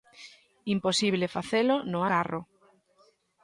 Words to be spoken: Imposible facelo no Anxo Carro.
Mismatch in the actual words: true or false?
true